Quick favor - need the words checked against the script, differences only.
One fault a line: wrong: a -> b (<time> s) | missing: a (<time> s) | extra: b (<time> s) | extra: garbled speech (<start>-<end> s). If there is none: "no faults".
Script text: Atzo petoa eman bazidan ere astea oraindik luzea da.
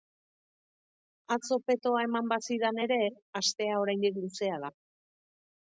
no faults